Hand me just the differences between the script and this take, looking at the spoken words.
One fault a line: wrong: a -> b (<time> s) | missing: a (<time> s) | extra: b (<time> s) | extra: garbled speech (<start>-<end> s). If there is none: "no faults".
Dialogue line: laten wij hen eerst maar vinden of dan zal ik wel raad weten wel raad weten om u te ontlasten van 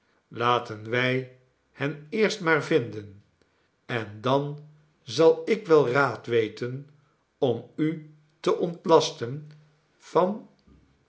wrong: of -> en (3.9 s)
missing: wel raad weten (6.9 s)